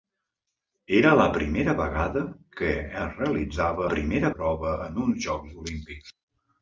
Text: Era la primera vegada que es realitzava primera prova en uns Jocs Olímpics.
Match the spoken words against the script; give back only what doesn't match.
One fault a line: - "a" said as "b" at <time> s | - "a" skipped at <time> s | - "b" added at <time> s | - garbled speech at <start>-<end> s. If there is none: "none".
none